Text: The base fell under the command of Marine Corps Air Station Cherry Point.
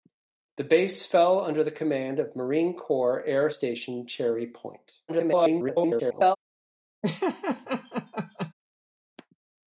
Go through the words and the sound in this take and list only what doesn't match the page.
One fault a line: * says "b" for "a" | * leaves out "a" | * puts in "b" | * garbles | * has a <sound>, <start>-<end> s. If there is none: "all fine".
* garbles
* has a laugh, 7.0-8.5 s